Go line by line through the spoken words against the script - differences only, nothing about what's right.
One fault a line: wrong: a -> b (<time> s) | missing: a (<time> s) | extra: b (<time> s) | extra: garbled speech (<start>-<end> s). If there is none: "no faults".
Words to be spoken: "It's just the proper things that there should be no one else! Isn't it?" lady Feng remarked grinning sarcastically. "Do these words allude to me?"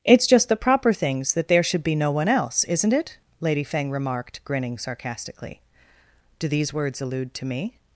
no faults